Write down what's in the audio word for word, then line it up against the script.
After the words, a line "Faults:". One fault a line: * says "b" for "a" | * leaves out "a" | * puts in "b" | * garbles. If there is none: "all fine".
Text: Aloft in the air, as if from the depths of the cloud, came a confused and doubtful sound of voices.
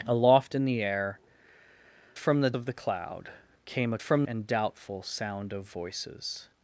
Aloft in the air, from the of the cloud, came a from and doubtful sound of voices.
Faults:
* leaves out "as if"
* leaves out "depths"
* says "from" for "confused"